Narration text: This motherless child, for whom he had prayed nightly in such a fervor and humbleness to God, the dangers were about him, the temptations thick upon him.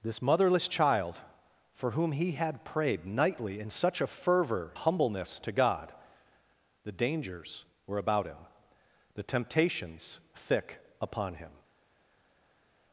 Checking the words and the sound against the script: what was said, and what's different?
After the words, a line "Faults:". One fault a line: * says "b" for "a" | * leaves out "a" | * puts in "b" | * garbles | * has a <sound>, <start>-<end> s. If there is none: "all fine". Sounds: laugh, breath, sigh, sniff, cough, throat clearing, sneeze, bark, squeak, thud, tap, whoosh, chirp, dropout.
This motherless child, for whom he had prayed nightly in such a fervor humbleness to God, the dangers were about him, the temptations thick upon him.
Faults:
* leaves out "and"